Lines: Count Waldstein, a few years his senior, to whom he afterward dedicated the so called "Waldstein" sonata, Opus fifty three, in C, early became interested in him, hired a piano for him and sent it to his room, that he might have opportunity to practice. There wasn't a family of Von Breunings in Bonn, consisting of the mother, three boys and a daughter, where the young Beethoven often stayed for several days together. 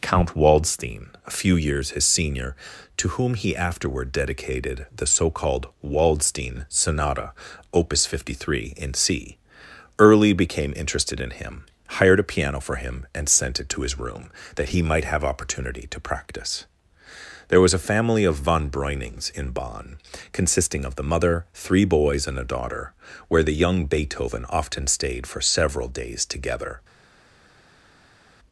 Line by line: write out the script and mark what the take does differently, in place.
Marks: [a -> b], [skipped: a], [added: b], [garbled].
Count Waldstein, a few years his senior, to whom he afterward dedicated the so called "Waldstein" sonata, Opus fifty three, in C, early became interested in him, hired a piano for him and sent it to his room, that he might have opportunity to practice. There [wasn't -> was] a family of Von Breunings in Bonn, consisting of the mother, three boys and a daughter, where the young Beethoven often stayed for several days together.